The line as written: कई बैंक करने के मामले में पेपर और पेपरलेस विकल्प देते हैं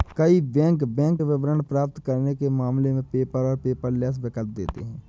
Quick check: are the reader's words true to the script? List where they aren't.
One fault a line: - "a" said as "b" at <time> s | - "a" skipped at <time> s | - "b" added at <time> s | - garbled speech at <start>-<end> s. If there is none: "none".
- "बैंक विवरण प्राप्त" added at 0.9 s